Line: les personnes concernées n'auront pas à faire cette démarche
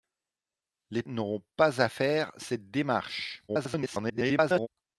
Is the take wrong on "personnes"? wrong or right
wrong